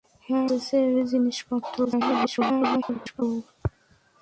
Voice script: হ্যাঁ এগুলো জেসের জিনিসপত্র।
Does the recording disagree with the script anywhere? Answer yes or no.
yes